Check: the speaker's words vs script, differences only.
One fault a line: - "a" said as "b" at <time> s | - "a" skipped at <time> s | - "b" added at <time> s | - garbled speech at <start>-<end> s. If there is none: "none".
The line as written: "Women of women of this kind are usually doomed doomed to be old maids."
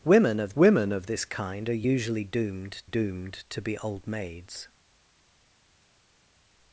none